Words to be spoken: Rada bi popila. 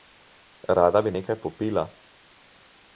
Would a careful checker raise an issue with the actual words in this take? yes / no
yes